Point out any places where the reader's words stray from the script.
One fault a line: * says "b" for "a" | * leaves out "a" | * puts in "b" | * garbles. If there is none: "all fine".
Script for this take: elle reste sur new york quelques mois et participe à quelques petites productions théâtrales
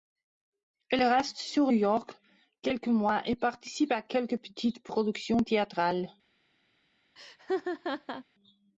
* leaves out "new"